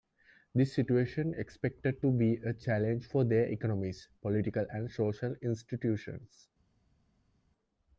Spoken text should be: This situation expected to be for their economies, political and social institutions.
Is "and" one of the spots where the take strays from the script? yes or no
no